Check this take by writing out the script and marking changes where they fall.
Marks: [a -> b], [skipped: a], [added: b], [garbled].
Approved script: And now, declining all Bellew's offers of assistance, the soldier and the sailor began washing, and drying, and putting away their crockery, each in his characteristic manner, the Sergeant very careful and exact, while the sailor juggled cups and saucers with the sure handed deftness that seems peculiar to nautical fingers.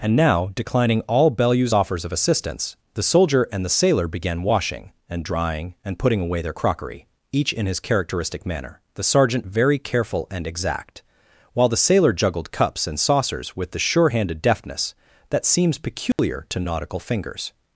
And now, declining all Bellew's offers of assistance, the soldier and the sailor began washing, and drying, and putting away their crockery, each in his characteristic manner, the Sergeant very careful and exact, while the sailor juggled cups and saucers with the sure handed deftness that seems peculiar to nautical fingers.